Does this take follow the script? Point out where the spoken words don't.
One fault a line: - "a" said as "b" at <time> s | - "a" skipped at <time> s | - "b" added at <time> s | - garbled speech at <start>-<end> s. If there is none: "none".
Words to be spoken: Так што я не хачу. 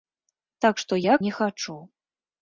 none